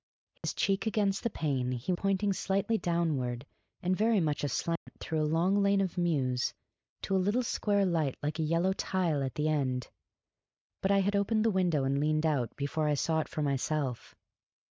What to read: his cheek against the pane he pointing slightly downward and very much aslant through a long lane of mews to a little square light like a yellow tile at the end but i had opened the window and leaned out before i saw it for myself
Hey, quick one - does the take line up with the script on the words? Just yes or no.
yes